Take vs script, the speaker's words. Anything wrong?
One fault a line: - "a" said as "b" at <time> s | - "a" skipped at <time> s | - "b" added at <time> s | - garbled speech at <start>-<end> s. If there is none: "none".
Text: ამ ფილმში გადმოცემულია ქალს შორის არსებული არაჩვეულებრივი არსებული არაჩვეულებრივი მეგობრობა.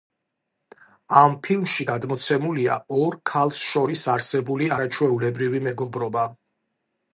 - "ორ" added at 3.0 s
- "არსებული არაჩვეულებრივი" skipped at 5.7 s